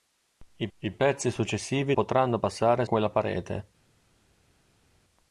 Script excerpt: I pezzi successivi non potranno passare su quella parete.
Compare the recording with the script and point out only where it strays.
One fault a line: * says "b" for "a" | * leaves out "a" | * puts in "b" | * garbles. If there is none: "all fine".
* puts in "I"
* leaves out "non"
* leaves out "su"